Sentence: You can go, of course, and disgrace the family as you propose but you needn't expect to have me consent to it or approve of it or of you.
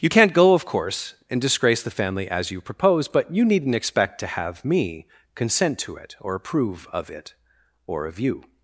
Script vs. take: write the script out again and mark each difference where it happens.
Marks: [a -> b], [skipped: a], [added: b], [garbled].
You [can -> can't] go, of course, and disgrace the family as you propose but you needn't expect to have me consent to it or approve of it or of you.